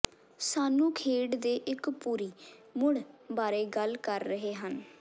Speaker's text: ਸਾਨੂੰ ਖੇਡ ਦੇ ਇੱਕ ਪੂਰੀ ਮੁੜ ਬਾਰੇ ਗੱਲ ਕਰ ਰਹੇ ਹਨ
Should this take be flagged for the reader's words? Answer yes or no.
no